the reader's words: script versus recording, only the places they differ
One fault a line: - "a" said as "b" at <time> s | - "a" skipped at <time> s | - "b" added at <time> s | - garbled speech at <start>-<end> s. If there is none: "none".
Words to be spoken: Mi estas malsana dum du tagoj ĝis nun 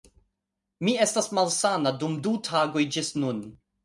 none